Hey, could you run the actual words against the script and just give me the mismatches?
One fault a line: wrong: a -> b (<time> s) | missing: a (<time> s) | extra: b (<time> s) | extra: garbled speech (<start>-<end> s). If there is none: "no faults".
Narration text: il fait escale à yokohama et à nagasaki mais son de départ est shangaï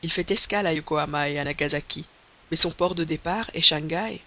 extra: port (2.7 s)